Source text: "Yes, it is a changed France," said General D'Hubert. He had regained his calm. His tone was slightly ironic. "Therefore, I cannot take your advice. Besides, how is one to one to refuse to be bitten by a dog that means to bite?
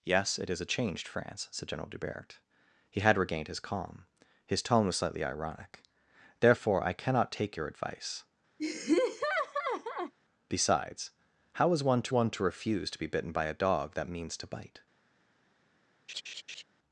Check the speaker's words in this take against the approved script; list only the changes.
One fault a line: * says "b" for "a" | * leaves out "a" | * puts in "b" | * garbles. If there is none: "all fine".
all fine